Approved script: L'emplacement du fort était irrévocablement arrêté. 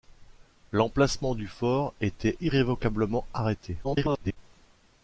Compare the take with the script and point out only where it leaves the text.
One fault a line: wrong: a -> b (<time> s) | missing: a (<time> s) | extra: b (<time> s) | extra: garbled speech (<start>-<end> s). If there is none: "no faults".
extra: garbled speech (3.8-4.4 s)